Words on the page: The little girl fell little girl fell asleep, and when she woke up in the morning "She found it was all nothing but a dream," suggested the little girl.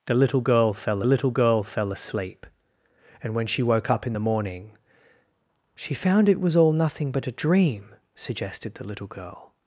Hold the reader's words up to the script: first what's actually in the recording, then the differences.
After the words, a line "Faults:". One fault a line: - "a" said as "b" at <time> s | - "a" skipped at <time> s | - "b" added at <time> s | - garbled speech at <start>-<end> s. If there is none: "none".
The little girl fell little girl fell asleep, and when she woke up in the morning "She found it was all nothing but a dream," suggested the little girl.
Faults:
none